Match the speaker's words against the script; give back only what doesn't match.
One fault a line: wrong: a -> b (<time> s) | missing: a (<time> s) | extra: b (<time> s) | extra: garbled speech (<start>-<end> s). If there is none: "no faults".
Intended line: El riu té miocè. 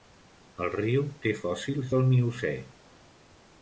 extra: fòssils del (1.4 s)